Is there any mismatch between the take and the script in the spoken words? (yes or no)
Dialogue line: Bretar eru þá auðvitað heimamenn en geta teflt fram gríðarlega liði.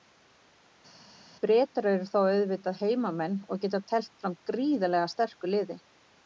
yes